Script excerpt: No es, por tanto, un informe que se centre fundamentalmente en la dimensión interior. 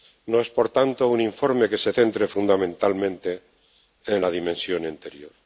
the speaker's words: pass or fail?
pass